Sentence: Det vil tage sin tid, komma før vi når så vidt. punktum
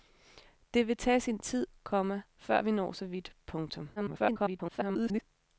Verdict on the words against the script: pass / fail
fail